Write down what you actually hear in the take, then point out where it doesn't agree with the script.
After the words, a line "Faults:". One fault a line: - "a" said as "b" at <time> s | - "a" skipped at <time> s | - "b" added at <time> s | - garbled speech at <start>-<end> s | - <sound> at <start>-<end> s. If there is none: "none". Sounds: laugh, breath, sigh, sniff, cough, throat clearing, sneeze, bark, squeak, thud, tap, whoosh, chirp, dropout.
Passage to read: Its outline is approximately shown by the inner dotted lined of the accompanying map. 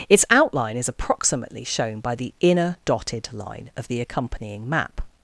Its outline is approximately shown by the inner dotted line of the accompanying map.
Faults:
- "lined" said as "line" at 3.3 s